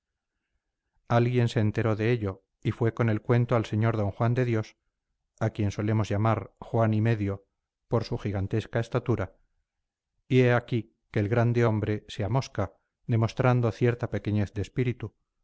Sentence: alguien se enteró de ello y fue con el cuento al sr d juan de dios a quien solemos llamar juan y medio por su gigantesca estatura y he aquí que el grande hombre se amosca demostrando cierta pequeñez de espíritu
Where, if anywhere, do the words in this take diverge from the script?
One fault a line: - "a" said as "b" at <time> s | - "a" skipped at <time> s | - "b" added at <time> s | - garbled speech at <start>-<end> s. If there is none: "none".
none